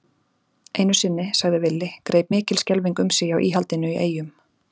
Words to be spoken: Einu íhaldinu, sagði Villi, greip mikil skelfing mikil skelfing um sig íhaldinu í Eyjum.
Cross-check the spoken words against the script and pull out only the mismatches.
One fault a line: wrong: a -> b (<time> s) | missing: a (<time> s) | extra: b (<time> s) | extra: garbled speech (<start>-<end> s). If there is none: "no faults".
wrong: íhaldinu -> sinni (1.0 s)
missing: mikil skelfing (3.0 s)
extra: hjá (3.3 s)